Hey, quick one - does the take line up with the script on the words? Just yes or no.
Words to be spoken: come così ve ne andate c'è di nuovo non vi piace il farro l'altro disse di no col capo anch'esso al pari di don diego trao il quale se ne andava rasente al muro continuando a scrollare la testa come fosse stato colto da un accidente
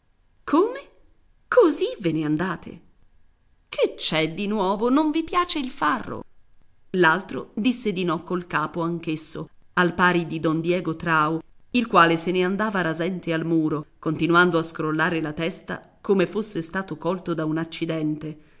no